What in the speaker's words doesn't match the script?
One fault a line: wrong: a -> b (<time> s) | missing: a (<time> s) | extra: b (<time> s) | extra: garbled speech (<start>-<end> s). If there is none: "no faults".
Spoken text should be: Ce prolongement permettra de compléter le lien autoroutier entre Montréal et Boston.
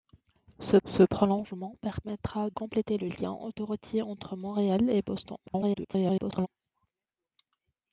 extra: ce (0.8 s)
missing: de (2.5 s)
extra: garbled speech (5.5-6.5 s)